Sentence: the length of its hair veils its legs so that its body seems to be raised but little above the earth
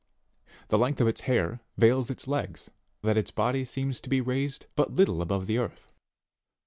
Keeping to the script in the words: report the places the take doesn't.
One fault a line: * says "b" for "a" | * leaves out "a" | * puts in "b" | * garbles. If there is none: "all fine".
* leaves out "so"